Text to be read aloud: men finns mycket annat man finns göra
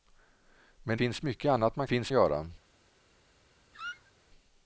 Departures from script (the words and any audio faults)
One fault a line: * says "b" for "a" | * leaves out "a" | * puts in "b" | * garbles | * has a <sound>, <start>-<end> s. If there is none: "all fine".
* has a squeak, 3.7-4.1 s